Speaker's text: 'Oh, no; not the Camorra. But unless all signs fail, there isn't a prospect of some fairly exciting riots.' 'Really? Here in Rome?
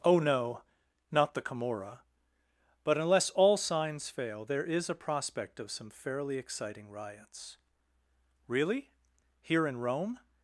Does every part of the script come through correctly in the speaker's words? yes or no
no